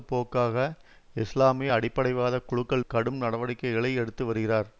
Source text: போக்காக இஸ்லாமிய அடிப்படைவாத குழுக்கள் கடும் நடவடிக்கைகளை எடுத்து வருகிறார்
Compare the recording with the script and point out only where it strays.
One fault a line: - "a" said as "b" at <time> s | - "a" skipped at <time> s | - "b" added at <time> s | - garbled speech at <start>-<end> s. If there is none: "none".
none